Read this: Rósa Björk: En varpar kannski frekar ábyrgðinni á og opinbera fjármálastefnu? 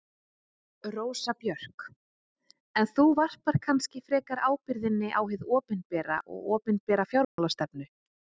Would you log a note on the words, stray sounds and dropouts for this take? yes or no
yes